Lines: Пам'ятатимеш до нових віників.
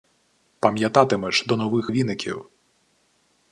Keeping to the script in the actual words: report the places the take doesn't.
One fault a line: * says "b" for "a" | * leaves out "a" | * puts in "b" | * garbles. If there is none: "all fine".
all fine